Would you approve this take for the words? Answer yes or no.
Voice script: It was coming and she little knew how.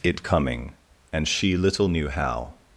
no